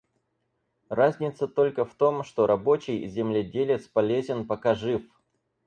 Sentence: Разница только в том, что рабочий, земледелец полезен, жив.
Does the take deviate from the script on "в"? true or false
false